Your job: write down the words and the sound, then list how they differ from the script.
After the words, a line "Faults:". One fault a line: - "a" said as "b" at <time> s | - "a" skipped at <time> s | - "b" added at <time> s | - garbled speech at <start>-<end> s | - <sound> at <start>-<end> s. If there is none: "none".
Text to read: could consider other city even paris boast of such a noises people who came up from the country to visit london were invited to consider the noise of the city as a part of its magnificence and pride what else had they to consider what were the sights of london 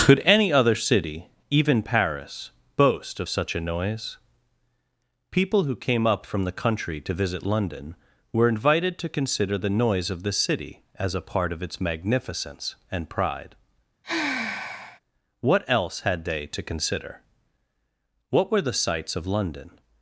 could any other city even paris boast of such a noise people who came up from the country to visit london were invited to consider the noise of the city as a part of its magnificence and pride what else had they to consider what were the sights of london
Faults:
- "consider" said as "any" at 0.2 s
- "noises" said as "noise" at 3.6 s
- sigh at 14.0-15.0 s